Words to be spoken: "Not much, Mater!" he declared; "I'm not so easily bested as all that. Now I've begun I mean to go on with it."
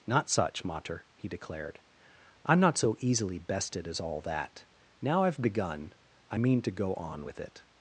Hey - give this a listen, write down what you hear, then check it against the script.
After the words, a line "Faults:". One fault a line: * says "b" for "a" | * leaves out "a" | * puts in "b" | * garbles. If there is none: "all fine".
"Not such, Mater!" he declared; "I'm not so easily bested as all that. Now I've begun I mean to go on with it."
Faults:
* says "such" for "much"